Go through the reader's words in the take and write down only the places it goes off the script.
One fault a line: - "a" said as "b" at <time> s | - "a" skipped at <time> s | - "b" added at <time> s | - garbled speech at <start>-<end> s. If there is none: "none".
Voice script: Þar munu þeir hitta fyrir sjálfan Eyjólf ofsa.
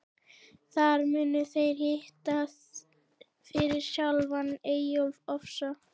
none